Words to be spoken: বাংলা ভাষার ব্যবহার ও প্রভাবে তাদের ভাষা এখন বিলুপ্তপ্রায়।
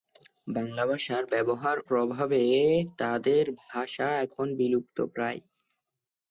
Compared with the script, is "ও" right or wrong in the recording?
wrong